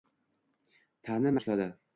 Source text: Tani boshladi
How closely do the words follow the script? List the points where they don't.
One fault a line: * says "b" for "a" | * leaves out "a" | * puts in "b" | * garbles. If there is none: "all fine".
all fine